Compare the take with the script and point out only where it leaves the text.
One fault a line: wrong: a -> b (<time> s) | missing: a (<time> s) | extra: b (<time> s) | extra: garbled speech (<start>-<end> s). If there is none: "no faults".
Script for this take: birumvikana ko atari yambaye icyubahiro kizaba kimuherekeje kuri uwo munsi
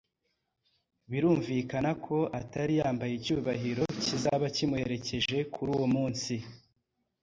no faults